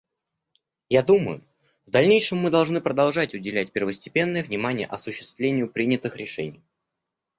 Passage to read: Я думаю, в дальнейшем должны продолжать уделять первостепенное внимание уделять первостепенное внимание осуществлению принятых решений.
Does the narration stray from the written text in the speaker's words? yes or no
yes